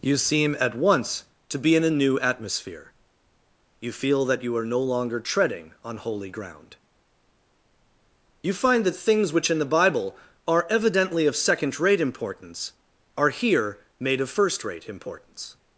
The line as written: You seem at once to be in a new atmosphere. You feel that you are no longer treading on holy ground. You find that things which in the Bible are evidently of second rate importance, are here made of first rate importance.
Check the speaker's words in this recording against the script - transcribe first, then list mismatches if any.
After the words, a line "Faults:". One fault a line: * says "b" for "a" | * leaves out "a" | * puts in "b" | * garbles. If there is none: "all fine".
You seem at once to be in a new atmosphere. You feel that you are no longer treading on holy ground. You find that things which in the Bible are evidently of second rate importance, are here made of first rate importance.
Faults:
all fine